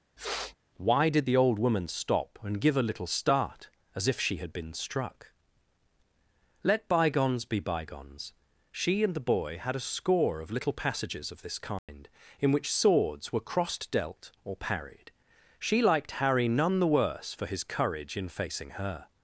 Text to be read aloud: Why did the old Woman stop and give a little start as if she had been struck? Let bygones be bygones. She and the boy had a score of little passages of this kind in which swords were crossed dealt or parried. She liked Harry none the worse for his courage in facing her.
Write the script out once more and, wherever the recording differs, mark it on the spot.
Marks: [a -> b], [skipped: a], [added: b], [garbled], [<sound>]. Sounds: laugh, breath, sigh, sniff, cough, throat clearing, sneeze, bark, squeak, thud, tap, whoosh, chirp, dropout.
[sniff] Why did the old Woman stop and give a little start as if she had been struck? Let bygones be bygones. She and the boy had a score of little passages of this kind [dropout] in which swords were crossed dealt or parried. She liked Harry none the worse for his courage in facing her.